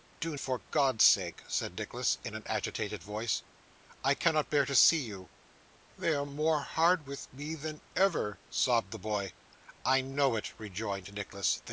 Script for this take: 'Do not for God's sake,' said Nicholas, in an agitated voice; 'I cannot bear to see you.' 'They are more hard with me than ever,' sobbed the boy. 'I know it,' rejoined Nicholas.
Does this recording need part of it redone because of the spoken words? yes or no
yes